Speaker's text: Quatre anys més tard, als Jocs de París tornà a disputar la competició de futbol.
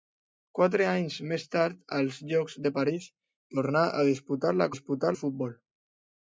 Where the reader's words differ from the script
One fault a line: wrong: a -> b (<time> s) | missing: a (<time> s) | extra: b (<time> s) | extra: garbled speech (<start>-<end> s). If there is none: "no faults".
wrong: competició -> disputar (4.7 s)